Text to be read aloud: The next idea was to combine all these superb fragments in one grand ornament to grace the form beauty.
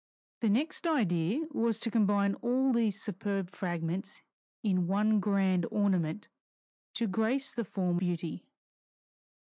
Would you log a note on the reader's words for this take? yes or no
no